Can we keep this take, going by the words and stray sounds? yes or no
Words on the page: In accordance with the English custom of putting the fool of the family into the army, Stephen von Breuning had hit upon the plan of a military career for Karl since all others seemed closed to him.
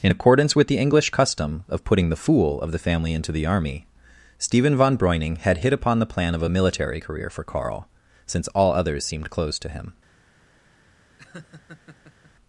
no